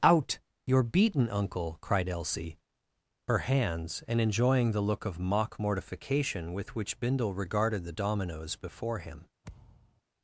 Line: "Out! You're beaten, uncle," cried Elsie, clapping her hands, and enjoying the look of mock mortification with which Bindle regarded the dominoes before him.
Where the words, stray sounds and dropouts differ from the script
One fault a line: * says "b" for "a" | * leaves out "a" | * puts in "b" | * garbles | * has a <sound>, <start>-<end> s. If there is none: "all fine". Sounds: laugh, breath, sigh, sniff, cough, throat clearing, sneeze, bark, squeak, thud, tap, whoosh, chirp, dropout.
* leaves out "clapping"
* has a thud, 9.4-10.0 s